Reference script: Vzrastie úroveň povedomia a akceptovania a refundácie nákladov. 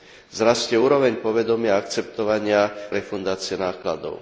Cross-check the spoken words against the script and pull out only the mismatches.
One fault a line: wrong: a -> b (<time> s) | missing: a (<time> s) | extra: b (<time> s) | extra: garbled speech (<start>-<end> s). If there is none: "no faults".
no faults